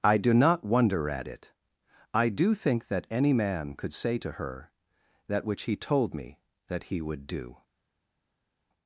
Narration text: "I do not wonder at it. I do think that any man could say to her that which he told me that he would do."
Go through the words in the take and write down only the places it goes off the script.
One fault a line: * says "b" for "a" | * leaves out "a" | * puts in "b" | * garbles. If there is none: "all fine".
all fine